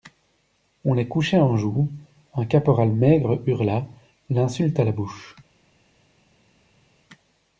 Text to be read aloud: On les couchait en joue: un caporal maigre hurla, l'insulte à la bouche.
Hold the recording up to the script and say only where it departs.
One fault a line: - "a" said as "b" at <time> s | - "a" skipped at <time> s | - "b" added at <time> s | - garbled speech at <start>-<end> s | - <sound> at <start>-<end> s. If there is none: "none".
none